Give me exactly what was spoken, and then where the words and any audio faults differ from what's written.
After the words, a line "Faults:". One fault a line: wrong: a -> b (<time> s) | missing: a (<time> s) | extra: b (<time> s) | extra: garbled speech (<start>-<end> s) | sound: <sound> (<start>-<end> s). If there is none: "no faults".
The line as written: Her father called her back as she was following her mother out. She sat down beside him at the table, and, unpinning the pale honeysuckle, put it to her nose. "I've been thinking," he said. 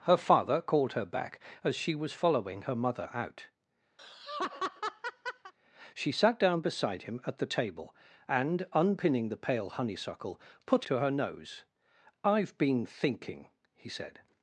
Her father called her back as she was following her mother out. She sat down beside him at the table, and, unpinning the pale honeysuckle, put to her nose. "I've been thinking," he said.
Faults:
sound: laugh (4.0-5.5 s)
missing: it (10.9 s)